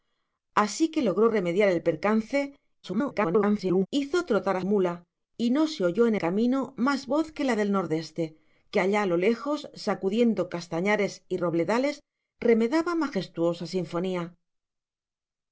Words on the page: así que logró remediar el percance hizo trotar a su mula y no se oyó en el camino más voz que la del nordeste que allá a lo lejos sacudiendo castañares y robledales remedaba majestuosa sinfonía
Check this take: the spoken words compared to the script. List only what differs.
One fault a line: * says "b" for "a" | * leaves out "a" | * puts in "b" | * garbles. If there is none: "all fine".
* garbles
* leaves out "su"
* leaves out "el"